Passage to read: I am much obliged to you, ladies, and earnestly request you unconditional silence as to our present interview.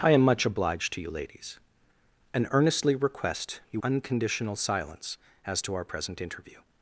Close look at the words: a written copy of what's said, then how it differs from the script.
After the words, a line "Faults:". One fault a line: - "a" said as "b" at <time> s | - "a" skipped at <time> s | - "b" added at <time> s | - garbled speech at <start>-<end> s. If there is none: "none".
I am much obliged to you, ladies, and earnestly request you unconditional silence as to our present interview.
Faults:
none